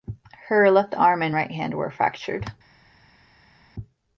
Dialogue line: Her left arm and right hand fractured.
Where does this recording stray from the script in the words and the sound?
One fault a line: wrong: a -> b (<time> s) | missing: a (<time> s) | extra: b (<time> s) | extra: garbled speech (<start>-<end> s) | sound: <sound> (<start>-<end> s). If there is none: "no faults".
extra: were (1.7 s)